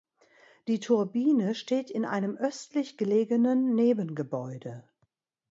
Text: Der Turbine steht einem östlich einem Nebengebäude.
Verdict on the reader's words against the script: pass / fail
fail